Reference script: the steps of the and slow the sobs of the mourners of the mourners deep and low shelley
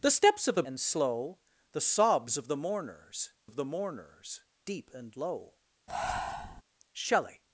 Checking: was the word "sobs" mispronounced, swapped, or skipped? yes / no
no